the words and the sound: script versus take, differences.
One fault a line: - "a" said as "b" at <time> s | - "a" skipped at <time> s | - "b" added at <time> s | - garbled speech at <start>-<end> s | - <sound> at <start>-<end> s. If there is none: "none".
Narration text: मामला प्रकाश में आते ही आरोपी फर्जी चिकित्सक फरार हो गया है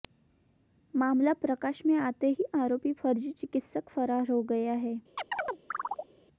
- chirp at 5.2-6.1 s